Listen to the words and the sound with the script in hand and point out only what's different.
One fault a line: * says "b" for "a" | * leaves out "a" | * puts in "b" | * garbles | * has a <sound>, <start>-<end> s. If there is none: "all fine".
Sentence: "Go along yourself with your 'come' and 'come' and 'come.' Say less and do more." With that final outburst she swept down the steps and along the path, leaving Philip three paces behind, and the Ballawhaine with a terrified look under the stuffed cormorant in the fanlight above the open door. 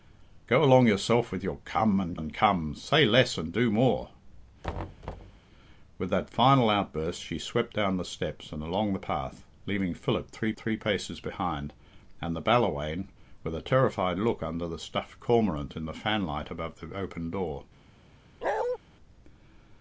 * leaves out "come"
* has a thud, 4.6-5.4 s
* puts in "three"
* has a bark, 18.4-18.8 s